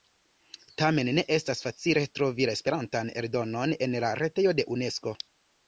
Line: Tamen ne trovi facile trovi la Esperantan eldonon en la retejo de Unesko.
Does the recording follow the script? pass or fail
fail